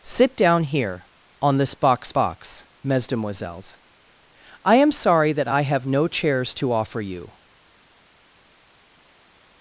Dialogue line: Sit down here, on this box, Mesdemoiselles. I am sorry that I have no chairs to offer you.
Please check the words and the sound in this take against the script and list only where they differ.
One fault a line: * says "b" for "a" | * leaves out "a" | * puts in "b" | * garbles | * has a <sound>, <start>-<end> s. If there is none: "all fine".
* puts in "box"